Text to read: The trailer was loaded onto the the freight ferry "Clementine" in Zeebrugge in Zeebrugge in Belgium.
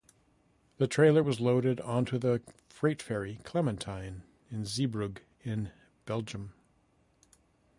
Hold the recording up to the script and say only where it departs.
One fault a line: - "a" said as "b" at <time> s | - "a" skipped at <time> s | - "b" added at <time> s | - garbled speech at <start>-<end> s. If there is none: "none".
- "the" skipped at 2.4 s
- "Zeebrugge in" skipped at 5.7 s